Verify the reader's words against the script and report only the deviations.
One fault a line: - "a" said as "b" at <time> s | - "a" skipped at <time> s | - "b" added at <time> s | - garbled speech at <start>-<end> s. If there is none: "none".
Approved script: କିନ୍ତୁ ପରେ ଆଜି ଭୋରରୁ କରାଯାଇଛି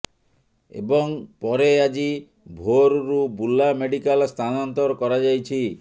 - "କିନ୍ତୁ" said as "ଏବଂ" at 0.7 s
- "ବୁର୍ଲା ମେଡିକାଲ ସ୍ଥାନାନ୍ତର" added at 3.4 s